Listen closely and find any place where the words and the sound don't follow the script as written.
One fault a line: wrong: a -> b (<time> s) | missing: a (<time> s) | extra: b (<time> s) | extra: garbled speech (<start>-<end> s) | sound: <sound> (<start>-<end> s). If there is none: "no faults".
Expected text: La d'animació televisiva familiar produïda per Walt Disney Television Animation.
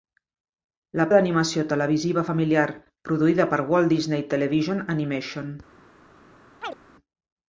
sound: chirp (6.6-6.8 s)